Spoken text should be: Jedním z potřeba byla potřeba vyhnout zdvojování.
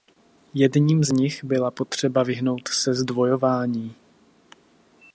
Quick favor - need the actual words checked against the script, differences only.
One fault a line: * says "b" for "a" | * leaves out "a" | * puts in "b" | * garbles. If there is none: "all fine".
* says "nich" for "potřeba"
* puts in "se"